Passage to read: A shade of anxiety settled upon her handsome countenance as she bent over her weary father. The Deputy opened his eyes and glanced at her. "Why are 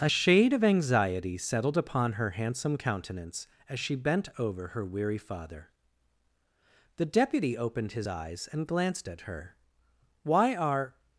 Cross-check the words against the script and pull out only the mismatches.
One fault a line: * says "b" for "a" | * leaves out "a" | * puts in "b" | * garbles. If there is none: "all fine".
all fine